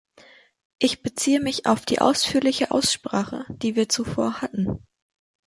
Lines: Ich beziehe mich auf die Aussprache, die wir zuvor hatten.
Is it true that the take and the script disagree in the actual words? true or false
true